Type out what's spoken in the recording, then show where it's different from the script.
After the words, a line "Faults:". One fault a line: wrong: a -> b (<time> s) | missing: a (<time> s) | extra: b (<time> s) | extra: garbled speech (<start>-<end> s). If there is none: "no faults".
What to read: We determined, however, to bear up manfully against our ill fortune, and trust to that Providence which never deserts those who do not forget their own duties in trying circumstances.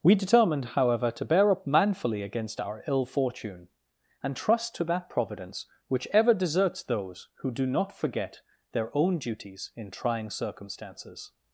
We determined, however, to bear up manfully against our ill fortune, and trust to that Providence which ever deserts those who do not forget their own duties in trying circumstances.
Faults:
wrong: never -> ever (6.1 s)